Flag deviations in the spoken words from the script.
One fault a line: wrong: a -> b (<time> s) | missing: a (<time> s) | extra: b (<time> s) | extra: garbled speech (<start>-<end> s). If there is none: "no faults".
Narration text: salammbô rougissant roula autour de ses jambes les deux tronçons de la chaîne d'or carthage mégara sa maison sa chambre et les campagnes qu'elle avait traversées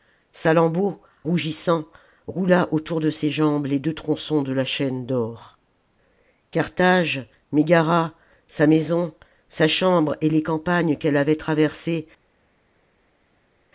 no faults